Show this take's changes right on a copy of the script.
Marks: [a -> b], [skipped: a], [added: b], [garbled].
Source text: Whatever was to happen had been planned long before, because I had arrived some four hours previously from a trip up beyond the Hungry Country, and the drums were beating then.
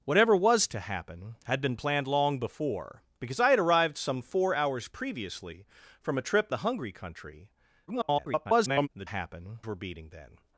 Whatever was to happen had been planned long before, because I had arrived some four hours previously from a trip [skipped: up beyond] the Hungry Country, [garbled] and the [drums -> happen] were beating then.